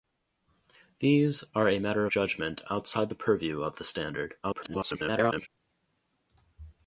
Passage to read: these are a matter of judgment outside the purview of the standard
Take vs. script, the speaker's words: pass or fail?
fail